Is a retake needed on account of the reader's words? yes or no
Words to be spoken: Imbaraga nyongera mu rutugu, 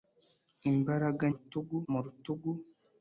yes